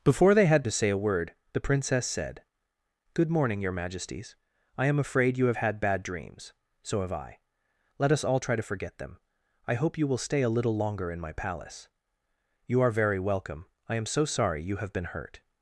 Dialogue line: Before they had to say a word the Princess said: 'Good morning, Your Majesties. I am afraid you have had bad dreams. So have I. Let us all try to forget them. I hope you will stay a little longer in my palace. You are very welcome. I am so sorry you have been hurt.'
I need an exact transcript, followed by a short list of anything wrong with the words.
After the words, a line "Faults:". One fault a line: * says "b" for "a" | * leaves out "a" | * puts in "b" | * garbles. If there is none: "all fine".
Before they had to say a word the Princess said: 'Good morning, Your Majesties. I am afraid you have had bad dreams. So have I. Let us all try to forget them. I hope you will stay a little longer in my palace. You are very welcome. I am so sorry you have been hurt.'
Faults:
all fine